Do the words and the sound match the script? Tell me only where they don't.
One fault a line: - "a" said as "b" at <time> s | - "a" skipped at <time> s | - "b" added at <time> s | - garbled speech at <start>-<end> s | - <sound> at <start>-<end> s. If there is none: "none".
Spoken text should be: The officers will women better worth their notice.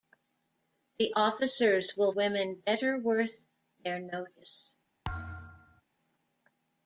- thud at 5.0-5.8 s